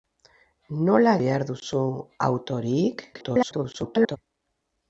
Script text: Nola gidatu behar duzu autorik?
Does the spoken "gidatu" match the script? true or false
false